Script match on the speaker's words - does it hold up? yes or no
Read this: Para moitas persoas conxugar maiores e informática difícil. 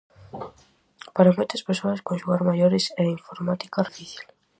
yes